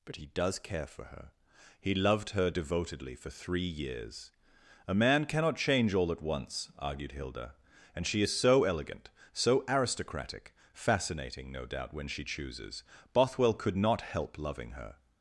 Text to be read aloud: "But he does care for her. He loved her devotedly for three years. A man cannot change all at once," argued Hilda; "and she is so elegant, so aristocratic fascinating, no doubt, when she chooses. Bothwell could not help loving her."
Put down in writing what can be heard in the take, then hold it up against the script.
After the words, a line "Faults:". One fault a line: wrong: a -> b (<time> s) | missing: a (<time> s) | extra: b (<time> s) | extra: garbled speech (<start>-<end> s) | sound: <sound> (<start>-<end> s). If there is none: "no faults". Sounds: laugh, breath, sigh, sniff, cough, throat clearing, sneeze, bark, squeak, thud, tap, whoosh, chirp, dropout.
"But he does care for her. He loved her devotedly for three years. A man cannot change all at once," argued Hilda; "and she is so elegant, so aristocratic fascinating, no doubt, when she chooses. Bothwell could not help loving her."
Faults:
no faults